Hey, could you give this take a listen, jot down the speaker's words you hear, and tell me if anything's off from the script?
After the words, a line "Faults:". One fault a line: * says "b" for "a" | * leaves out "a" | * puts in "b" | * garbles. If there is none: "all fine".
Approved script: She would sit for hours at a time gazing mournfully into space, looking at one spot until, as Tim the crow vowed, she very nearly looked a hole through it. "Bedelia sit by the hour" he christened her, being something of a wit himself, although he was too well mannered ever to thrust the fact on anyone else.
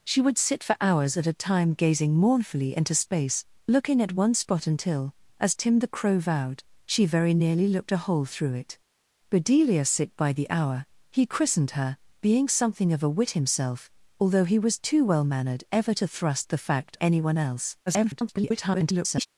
She would sit for hours at a time gazing mournfully into space, looking at one spot until, as Tim the crow vowed, she very nearly looked a hole through it. "Bedelia sit by the hour" he christened her, being something of a wit himself, although he was too well mannered ever to thrust the fact anyone else. [garbled]
Faults:
* leaves out "on"
* garbles